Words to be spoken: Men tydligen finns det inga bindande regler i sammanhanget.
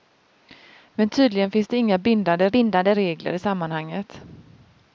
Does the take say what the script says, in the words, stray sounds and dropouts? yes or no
no